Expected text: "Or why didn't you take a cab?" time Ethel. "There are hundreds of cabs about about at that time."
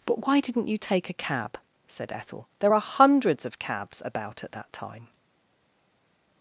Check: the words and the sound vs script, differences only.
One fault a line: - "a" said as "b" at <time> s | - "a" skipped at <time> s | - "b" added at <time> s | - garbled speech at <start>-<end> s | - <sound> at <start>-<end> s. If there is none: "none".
- "Or" said as "But" at 0.1 s
- "time" said as "said" at 1.9 s
- "about" skipped at 4.4 s